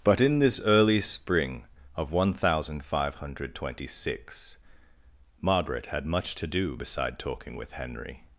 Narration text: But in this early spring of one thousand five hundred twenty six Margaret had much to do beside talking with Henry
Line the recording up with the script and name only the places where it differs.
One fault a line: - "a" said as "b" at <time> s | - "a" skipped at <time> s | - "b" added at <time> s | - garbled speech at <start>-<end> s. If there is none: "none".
none